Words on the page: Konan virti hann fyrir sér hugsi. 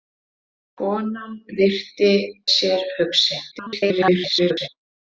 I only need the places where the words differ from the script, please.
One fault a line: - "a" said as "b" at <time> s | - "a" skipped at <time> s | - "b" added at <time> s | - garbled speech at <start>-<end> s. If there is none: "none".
- "hann fyrir" skipped at 2.1 s
- garbled speech at 3.5-4.7 s